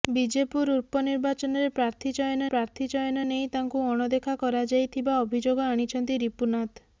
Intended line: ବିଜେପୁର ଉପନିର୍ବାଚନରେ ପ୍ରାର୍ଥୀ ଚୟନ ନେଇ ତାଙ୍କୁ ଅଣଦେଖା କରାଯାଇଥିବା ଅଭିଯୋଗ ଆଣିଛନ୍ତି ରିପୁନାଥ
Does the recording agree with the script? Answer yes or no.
no